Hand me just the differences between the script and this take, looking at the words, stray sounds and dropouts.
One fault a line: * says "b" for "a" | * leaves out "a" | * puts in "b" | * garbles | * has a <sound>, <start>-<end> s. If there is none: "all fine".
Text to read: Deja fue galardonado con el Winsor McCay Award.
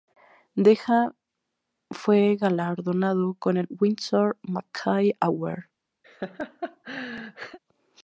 * has a laugh, 6.0-7.6 s